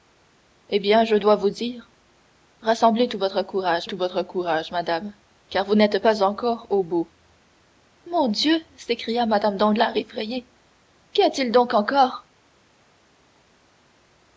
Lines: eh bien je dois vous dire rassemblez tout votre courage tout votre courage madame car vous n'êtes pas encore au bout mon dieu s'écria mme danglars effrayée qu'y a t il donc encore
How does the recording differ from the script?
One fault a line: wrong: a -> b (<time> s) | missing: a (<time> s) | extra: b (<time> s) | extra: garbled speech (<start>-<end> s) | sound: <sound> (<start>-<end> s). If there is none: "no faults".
no faults